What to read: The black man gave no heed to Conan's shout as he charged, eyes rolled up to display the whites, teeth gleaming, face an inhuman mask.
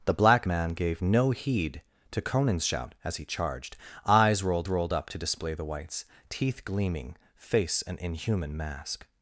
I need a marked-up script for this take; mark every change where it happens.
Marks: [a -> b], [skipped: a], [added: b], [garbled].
The black man gave no heed to Conan's shout as he charged, eyes rolled [added: rolled] up to display the whites, teeth gleaming, face an inhuman mask.